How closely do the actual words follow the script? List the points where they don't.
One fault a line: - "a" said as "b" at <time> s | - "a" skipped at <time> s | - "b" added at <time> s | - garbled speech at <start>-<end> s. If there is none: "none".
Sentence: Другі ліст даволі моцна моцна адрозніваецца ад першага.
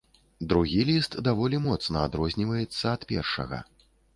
- "моцна" skipped at 2.1 s